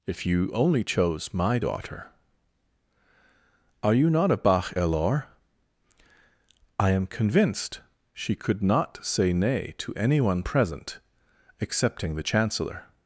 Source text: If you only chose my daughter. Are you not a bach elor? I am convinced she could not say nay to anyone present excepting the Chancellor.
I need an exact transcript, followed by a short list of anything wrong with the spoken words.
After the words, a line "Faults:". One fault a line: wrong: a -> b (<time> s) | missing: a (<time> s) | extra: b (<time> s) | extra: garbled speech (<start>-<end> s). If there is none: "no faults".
If you only chose my daughter. Are you not a bach elor? I am convinced she could not say nay to anyone present excepting the Chancellor.
Faults:
no faults